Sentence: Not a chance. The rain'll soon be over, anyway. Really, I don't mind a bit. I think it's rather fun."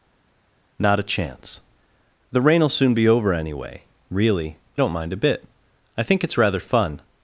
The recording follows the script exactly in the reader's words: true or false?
false